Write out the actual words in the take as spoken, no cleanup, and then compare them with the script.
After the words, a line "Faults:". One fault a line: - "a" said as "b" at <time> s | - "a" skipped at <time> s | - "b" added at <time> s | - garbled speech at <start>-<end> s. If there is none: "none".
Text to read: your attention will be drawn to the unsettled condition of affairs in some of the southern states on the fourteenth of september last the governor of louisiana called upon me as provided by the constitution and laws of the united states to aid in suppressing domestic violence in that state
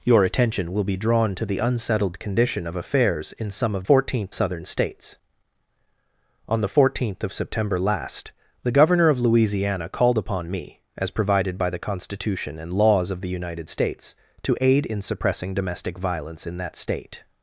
your attention will be drawn to the unsettled condition of affairs in some of fourteenth southern states on the fourteenth of september last the governor of louisiana called upon me as provided by the constitution and laws of the united states to aid in suppressing domestic violence in that state
Faults:
- "the" said as "fourteenth" at 3.8 s